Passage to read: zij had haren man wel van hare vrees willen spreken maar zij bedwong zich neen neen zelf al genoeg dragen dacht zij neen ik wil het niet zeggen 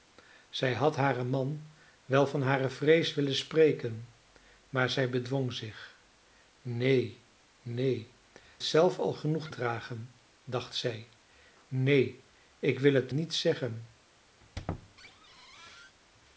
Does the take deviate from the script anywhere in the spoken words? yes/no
no